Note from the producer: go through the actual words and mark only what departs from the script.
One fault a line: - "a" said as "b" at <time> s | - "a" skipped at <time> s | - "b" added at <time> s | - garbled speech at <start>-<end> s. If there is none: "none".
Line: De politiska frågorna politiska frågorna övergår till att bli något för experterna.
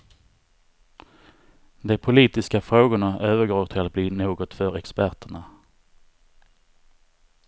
- "politiska frågorna" skipped at 3.2 s